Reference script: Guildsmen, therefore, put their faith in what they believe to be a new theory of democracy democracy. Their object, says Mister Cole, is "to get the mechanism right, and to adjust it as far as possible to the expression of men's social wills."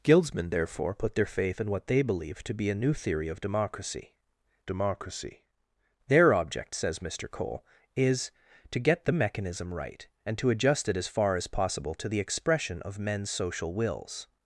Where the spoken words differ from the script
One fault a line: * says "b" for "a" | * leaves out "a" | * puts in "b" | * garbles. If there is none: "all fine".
all fine